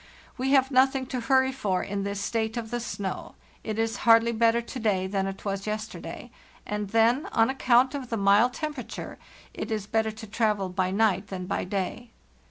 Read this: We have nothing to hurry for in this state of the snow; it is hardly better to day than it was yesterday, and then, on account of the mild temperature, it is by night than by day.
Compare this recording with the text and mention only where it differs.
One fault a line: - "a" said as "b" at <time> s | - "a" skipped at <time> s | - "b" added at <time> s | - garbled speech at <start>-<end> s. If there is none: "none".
- "better to travel" added at 9.8 s